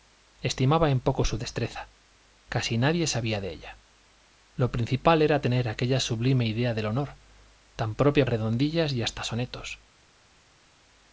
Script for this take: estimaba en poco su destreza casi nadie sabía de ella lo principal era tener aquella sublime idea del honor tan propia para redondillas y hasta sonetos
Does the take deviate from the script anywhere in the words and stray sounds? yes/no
yes